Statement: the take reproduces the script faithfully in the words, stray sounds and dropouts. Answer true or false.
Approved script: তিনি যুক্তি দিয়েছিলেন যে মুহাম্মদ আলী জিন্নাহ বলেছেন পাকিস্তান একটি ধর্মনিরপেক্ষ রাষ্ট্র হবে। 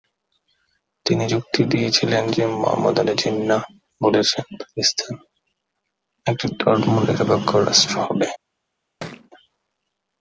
false